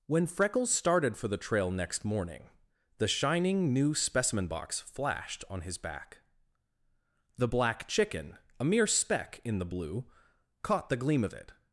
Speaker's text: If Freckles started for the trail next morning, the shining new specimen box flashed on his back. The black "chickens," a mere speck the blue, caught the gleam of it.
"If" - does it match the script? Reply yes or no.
no